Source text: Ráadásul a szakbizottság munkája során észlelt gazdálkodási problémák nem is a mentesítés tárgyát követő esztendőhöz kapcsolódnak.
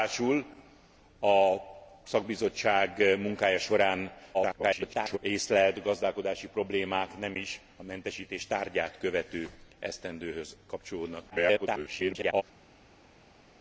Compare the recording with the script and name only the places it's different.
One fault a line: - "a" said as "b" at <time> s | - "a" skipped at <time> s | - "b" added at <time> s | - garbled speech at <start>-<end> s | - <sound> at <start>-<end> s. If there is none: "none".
- garbled speech at 4.3-5.2 s
- garbled speech at 11.3-12.4 s